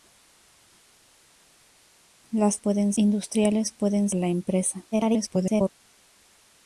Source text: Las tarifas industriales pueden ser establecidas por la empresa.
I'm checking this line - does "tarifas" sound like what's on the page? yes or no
no